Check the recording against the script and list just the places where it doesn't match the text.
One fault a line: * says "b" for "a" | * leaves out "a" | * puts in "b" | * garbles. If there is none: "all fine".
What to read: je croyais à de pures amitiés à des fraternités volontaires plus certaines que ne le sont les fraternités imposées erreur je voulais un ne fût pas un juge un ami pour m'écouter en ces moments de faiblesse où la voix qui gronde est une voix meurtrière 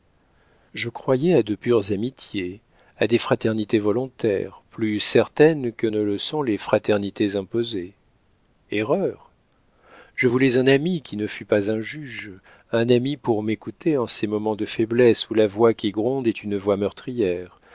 * puts in "ami qui"